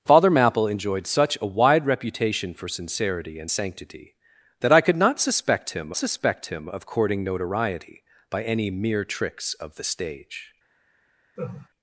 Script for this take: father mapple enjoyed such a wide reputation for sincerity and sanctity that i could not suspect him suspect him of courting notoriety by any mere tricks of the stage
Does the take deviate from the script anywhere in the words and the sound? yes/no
yes